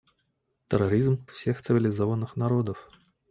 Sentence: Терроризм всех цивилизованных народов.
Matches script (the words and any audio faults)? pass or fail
pass